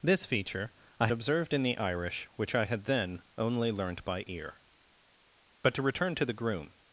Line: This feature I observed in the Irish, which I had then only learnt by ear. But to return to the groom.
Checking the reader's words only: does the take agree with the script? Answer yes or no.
yes